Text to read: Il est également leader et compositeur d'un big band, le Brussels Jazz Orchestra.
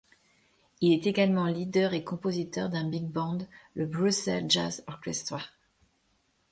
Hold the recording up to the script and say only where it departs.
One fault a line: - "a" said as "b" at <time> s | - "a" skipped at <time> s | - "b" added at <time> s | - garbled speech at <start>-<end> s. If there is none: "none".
none